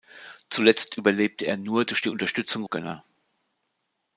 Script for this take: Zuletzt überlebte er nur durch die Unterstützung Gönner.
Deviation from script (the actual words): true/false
false